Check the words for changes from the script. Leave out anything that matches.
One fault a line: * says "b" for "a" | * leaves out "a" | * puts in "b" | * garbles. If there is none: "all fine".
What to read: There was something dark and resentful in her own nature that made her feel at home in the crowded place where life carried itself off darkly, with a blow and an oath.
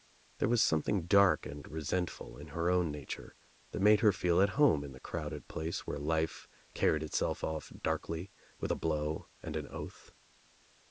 all fine